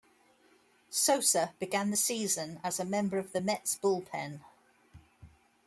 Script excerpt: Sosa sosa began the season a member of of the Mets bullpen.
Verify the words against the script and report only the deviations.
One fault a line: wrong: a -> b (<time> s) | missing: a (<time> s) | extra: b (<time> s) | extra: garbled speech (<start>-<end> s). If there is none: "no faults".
missing: sosa (1.5 s)
extra: as (2.6 s)
missing: of (3.3 s)